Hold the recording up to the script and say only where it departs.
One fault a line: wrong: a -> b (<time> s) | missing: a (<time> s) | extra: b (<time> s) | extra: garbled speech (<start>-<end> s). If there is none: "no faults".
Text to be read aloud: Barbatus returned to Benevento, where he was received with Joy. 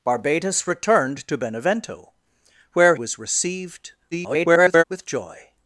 missing: he (3.0 s)
extra: garbled speech (4.1-4.8 s)